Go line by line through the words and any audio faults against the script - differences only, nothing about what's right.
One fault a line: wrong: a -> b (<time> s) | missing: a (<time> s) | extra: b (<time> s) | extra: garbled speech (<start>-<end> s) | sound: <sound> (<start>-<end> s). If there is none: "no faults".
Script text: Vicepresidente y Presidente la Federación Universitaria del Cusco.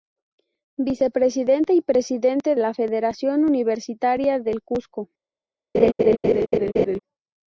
sound: laugh (5.7-7.0 s)